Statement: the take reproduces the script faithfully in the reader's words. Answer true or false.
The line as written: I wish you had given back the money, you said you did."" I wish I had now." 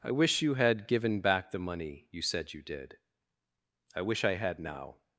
true